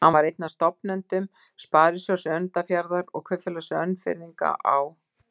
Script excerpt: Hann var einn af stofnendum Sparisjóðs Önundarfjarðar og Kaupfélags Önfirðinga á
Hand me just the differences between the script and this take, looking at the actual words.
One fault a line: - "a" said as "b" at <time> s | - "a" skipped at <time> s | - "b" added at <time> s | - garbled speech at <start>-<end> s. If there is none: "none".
none